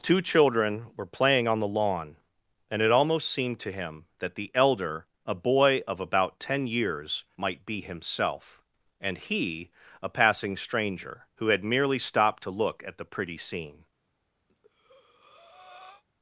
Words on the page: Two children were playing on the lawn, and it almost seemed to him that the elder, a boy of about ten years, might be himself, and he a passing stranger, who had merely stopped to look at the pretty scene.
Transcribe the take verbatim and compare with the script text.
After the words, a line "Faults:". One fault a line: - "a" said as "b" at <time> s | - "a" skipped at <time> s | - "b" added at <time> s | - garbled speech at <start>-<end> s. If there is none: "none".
Two children were playing on the lawn, and it almost seemed to him that the elder, a boy of about ten years, might be himself, and he a passing stranger, who had merely stopped to look at the pretty scene.
Faults:
none